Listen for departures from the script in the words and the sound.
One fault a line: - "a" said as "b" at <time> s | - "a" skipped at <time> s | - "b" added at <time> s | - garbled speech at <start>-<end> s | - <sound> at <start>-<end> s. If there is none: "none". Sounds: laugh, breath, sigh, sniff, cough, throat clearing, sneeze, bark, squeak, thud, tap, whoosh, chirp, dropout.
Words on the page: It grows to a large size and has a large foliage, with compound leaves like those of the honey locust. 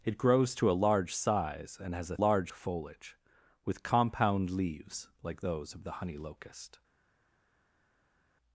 none